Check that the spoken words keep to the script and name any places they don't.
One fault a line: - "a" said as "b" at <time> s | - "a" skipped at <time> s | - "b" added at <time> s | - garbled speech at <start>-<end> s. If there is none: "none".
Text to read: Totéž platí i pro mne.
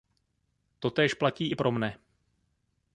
none